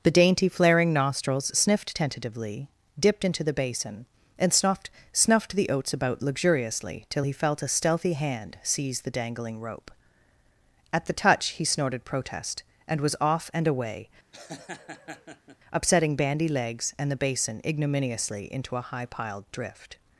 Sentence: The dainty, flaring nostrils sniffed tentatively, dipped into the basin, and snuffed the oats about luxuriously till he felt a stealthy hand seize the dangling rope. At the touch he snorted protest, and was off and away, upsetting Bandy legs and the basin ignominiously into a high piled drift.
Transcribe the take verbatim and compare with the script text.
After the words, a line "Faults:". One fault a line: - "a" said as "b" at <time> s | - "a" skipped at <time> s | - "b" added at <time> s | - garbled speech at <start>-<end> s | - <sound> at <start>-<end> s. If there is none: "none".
The dainty, flaring nostrils sniffed tentatively, dipped into the basin, and snuffed snuffed the oats about luxuriously till he felt a stealthy hand seize the dangling rope. At the touch he snorted protest, and was off and away, upsetting Bandy legs and the basin ignominiously into a high piled drift.
Faults:
- "snuffed" added at 5.1 s
- laugh at 14.3-15.6 s